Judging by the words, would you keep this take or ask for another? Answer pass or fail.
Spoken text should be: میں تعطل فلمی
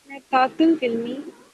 pass